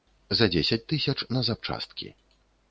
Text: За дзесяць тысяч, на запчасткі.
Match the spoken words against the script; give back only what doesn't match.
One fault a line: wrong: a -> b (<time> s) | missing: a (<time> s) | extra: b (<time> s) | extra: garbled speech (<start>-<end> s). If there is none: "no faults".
no faults